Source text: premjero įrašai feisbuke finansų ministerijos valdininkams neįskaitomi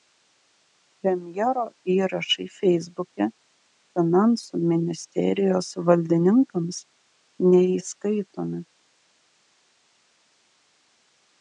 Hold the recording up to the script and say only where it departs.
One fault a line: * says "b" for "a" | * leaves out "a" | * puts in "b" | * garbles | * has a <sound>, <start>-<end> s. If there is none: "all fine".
all fine